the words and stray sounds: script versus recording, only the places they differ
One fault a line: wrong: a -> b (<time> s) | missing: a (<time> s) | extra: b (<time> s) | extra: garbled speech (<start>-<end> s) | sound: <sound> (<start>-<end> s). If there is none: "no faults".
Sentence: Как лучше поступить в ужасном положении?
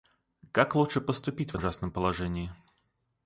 no faults